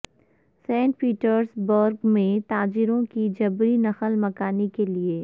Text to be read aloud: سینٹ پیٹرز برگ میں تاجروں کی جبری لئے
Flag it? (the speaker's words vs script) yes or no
yes